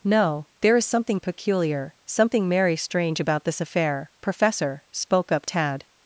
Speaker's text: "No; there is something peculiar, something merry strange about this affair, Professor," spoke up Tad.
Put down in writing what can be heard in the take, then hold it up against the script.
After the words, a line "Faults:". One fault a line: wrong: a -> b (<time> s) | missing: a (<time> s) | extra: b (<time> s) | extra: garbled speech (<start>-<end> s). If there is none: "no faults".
"No; there is something peculiar, something merry strange about this affair, Professor," spoke up Tad.
Faults:
no faults